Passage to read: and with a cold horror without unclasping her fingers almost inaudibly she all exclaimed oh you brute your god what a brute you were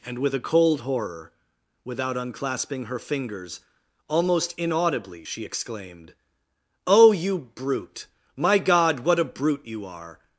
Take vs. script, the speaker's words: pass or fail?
fail